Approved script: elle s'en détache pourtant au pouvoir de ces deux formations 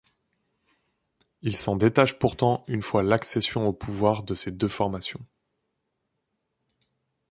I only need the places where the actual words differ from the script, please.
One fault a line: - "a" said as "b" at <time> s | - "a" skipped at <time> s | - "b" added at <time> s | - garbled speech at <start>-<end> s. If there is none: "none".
- "elle" said as "il" at 1.4 s
- "une fois l'accession" added at 2.7 s